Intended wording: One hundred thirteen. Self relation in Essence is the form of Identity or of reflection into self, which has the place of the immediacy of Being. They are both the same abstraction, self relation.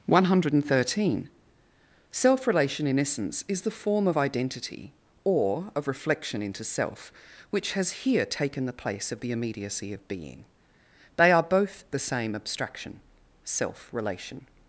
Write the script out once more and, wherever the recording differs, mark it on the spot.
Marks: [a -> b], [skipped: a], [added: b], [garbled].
One hundred thirteen. Self relation in Essence is the form of Identity or of reflection into self, which has [added: here taken] the place of the immediacy of Being. They are both the same abstraction, self relation.